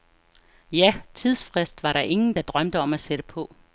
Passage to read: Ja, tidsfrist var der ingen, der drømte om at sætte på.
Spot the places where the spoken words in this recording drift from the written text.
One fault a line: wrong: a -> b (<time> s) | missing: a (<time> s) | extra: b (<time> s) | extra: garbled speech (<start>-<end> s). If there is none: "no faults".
no faults